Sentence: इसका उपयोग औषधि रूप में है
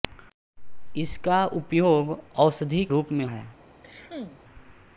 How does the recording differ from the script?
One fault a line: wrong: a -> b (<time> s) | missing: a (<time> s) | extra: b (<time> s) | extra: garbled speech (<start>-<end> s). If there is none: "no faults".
no faults